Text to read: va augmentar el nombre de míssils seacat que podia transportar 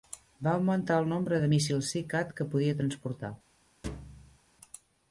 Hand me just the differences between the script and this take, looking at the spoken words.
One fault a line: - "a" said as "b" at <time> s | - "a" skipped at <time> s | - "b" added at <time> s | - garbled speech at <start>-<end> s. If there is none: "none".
none